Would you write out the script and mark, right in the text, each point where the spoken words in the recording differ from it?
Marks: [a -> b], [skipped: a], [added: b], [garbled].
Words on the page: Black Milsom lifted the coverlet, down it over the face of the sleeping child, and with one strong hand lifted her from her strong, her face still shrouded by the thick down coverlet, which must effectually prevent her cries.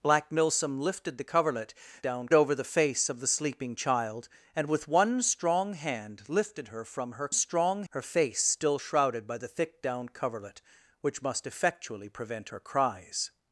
Black Milsom lifted the coverlet, down it over the face of the sleeping child, and with one strong hand lifted her from her strong, her face still shrouded by the thick down coverlet, which must effectually prevent her cries.